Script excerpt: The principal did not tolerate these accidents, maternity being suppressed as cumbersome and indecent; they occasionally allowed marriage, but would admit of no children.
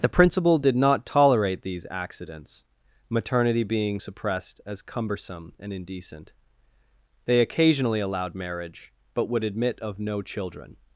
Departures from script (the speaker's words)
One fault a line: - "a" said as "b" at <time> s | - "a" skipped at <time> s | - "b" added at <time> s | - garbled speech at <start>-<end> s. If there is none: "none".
none